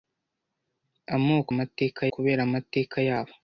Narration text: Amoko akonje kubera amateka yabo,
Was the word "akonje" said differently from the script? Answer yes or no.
yes